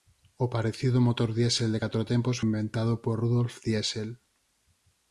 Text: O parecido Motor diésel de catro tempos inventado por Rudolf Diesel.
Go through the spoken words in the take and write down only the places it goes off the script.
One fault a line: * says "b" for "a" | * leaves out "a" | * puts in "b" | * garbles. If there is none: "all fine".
all fine